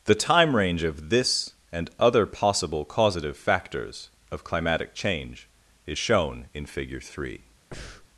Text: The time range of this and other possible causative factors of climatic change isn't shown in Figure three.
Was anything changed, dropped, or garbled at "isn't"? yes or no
yes